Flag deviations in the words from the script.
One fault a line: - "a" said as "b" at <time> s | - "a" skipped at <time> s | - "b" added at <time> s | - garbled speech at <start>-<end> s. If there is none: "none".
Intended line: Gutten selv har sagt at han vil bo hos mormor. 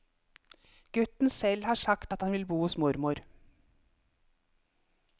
none